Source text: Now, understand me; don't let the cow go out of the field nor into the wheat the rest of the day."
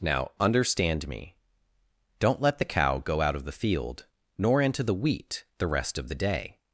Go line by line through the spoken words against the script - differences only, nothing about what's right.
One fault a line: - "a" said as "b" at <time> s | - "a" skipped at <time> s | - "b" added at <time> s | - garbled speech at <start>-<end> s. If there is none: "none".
none